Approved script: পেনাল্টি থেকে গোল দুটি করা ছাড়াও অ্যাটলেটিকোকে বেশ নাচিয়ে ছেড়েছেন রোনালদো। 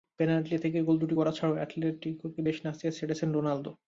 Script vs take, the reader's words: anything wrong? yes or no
no